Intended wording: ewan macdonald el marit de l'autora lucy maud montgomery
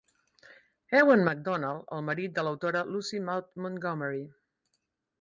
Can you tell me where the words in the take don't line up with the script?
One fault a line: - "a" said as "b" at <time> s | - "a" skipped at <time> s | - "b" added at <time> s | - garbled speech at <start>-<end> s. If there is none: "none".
none